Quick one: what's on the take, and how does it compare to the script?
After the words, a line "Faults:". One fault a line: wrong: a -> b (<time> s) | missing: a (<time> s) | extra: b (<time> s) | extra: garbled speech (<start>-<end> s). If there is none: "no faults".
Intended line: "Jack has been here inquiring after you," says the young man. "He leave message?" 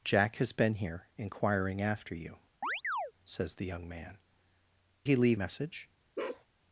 "Jack has been here inquiring after you," says the young man. "He leave message?"
Faults:
no faults